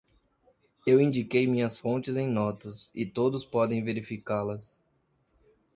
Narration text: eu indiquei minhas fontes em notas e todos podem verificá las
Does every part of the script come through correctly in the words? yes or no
yes